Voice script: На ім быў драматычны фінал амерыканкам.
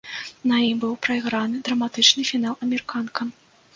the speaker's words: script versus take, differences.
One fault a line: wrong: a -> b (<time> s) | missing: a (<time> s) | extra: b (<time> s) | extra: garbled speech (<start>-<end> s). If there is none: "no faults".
extra: прайграны (1.1 s)